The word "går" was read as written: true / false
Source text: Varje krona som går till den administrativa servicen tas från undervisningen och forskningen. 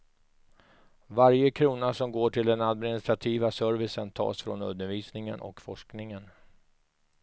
true